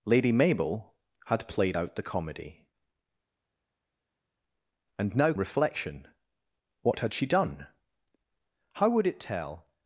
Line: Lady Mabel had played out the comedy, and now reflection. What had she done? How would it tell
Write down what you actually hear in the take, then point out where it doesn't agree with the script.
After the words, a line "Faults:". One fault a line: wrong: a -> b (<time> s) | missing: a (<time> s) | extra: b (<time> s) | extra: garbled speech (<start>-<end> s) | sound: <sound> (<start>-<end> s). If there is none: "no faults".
Lady Mabel had played out the comedy, and now reflection. What had she done? How would it tell
Faults:
no faults